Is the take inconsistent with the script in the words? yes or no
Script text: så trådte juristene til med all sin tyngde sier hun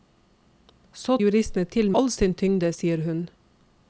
yes